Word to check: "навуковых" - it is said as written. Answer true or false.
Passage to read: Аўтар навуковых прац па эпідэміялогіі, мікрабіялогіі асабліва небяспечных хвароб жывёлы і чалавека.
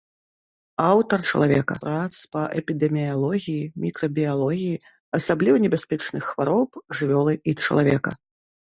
false